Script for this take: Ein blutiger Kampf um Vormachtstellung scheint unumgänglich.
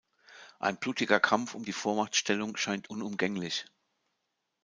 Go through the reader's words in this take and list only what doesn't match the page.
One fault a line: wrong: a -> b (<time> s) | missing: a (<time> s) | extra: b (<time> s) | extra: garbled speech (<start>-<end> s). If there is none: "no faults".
extra: die (1.6 s)